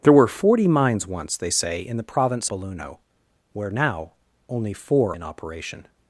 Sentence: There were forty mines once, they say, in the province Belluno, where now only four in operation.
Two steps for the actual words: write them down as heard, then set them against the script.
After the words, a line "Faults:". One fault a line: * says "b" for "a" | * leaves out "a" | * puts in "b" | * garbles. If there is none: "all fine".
There were forty mines once, they say, in the province Belluno, where now only four in operation.
Faults:
all fine